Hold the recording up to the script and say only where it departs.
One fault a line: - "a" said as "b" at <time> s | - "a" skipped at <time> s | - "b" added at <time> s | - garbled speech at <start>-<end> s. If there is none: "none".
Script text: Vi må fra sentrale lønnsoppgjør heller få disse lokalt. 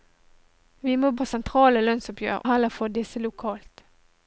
none